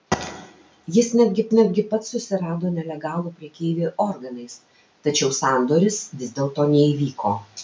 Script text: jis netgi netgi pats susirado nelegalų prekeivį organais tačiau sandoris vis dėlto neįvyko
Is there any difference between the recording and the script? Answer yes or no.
no